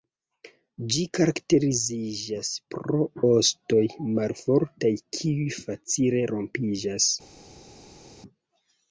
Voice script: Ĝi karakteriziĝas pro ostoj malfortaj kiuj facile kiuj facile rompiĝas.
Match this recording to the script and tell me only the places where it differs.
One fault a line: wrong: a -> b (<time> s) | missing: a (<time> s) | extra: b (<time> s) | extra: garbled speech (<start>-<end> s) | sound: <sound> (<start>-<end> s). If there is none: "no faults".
missing: kiuj facile (6.2 s)